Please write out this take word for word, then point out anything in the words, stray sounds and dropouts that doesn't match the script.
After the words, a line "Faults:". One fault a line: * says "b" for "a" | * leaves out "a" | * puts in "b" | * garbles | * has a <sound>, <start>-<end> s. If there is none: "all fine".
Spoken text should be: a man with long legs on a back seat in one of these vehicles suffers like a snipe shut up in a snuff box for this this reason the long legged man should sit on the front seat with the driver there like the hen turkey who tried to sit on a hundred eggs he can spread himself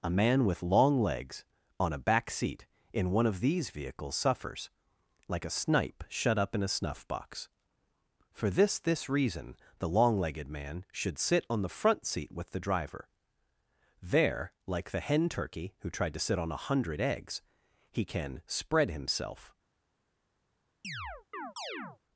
a man with long legs on a back seat in one of these vehicles suffers like a snipe shut up in a snuff box for this this reason the long legged man should sit on the front seat with the driver there like the hen turkey who tried to sit on a hundred eggs he can spread himself
Faults:
* has a chirp, 20.8-22.0 s